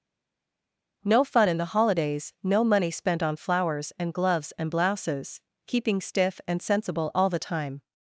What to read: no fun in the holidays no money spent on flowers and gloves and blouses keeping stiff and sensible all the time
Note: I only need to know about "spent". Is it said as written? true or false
true